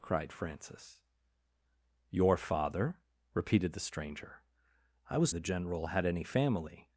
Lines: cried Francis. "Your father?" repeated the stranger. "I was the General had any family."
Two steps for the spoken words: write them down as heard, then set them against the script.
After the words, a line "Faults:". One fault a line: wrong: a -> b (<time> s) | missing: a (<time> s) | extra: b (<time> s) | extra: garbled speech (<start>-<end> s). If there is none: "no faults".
cried Francis. "Your father?" repeated the stranger. "I was the General had any family."
Faults:
no faults